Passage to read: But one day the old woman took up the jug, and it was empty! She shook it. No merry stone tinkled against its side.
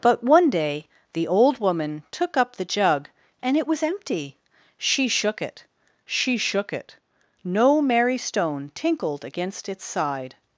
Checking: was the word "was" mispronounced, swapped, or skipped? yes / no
no